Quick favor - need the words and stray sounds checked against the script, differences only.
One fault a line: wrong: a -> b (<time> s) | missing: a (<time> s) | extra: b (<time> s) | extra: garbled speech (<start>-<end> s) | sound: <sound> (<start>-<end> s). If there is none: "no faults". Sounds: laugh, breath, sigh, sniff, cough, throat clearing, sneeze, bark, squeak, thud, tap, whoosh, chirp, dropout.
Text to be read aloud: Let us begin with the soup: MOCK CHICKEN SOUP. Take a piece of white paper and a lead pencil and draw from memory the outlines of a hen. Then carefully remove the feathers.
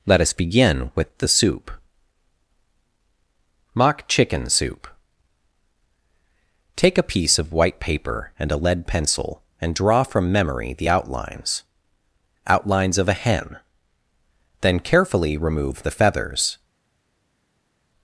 extra: outlines (12.5 s)